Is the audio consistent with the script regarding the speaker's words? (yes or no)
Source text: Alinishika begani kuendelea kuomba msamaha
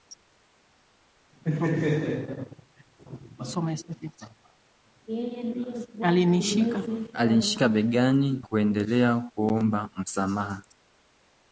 yes